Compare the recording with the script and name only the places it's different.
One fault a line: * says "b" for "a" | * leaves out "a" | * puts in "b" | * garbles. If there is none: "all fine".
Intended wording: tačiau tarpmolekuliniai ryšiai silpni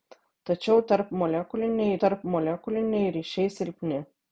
* puts in "tarpmolekuliniai"